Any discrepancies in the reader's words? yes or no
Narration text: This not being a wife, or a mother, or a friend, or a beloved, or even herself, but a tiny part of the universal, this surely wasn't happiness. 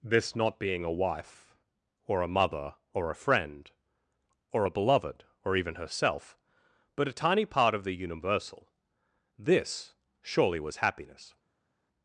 yes